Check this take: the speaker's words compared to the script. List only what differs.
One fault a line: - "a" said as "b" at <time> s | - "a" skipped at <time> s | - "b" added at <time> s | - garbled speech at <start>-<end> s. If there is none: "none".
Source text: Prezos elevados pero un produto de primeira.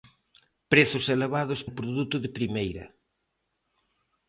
- "pero" skipped at 1.6 s